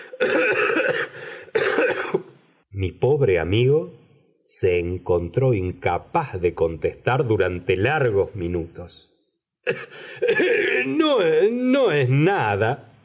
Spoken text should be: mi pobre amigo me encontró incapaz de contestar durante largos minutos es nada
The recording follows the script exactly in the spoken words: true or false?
false